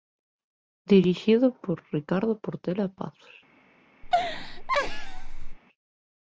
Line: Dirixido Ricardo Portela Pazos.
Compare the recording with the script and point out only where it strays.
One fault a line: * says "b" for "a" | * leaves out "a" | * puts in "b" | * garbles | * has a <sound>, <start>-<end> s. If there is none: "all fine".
* puts in "por"
* has a laugh, 4.0-5.6 s